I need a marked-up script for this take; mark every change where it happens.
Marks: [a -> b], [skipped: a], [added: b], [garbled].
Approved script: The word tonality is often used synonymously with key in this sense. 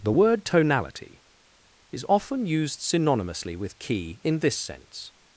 The word tonality is often used synonymously with key in this sense.